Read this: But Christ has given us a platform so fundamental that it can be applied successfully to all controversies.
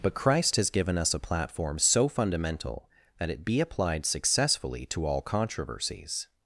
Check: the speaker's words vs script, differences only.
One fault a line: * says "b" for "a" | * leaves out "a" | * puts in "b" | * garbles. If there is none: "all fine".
* leaves out "can"